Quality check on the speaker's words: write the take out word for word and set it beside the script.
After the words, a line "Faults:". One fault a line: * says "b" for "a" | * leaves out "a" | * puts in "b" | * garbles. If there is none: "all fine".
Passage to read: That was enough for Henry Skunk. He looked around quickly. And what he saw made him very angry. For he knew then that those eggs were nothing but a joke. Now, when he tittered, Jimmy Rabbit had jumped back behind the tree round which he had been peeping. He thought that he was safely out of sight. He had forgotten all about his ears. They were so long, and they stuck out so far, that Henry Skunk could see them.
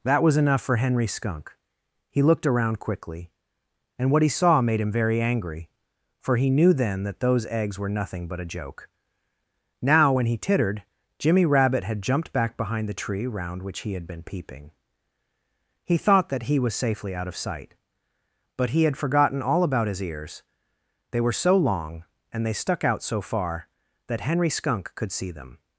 That was enough for Henry Skunk. He looked around quickly. And what he saw made him very angry. For he knew then that those eggs were nothing but a joke. Now, when he tittered, Jimmy Rabbit had jumped back behind the tree round which he had been peeping. He thought that he was safely out of sight. But he had forgotten all about his ears. They were so long, and they stuck out so far, that Henry Skunk could see them.
Faults:
* puts in "But"